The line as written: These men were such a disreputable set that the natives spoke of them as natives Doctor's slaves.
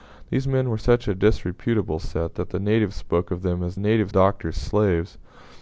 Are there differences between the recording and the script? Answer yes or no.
no